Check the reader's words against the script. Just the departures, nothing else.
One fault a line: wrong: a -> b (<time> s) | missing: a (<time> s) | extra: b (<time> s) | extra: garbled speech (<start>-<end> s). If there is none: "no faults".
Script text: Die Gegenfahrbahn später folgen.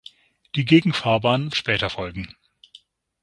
no faults